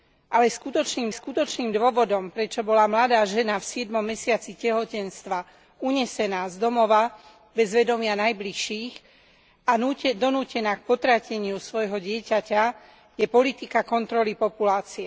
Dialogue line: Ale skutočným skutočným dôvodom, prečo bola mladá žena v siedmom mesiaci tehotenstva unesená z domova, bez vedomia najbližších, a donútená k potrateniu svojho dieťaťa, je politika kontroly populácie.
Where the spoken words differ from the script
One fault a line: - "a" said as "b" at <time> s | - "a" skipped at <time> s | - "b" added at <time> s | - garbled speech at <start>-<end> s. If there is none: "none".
none